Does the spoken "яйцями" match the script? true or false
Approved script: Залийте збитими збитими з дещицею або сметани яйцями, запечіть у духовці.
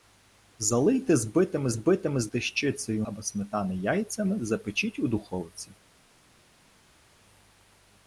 true